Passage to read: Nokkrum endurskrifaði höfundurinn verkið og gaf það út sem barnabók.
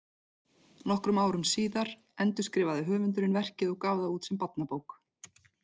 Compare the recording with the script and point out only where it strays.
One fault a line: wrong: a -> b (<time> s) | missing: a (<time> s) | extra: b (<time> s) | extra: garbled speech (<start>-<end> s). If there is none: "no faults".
extra: árum síðar (1.2 s)